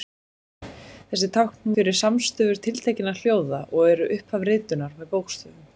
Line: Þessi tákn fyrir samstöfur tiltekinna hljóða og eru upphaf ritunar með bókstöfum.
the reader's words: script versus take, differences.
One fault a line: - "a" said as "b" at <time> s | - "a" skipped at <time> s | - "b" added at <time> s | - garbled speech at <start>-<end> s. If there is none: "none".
none